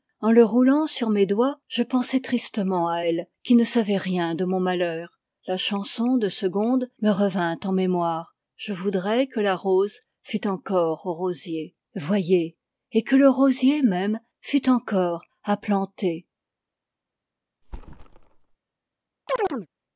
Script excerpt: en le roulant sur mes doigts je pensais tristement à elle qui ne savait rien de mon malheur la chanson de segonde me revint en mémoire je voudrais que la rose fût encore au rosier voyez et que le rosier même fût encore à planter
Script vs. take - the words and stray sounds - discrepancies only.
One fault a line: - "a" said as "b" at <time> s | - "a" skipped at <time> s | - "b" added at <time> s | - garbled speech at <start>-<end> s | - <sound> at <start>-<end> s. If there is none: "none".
- thud at 17.6-18.6 s
- chirp at 19.3-19.7 s